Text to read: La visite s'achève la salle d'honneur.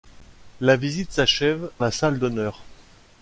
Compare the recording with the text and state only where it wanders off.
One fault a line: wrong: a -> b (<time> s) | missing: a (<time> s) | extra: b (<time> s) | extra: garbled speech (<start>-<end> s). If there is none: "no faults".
no faults